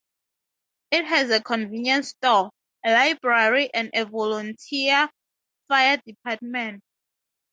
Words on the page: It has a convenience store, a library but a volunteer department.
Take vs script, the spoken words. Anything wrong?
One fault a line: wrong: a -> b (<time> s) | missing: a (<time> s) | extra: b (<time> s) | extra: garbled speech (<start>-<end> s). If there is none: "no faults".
wrong: but -> and (3.7 s)
extra: fire (5.7 s)